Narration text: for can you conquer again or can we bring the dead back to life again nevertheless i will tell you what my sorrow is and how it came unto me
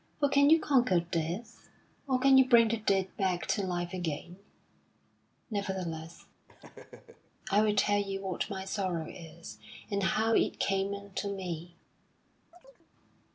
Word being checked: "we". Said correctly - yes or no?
no